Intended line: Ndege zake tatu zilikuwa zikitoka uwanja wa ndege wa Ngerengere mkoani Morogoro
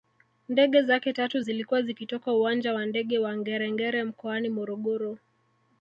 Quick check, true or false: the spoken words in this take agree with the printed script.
true